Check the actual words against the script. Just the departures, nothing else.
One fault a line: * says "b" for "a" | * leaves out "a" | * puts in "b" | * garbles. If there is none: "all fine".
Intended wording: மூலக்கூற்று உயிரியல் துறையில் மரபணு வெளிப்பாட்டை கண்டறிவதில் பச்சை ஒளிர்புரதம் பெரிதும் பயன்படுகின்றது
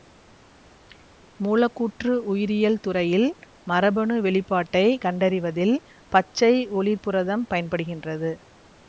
* leaves out "பெரிதும்"